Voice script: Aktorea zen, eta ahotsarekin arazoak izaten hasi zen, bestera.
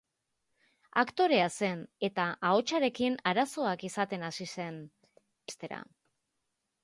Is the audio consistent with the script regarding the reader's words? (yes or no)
yes